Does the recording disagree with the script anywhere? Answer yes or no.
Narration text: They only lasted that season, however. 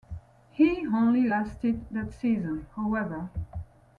yes